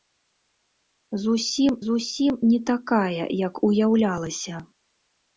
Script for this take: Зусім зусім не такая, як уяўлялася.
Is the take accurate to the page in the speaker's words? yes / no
yes